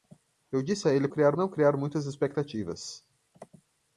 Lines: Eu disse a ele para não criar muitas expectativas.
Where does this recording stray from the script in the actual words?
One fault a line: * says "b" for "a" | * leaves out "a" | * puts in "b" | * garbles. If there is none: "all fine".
* says "criar" for "para"